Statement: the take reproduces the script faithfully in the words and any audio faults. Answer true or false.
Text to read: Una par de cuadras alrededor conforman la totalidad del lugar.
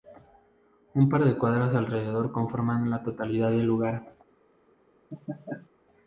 false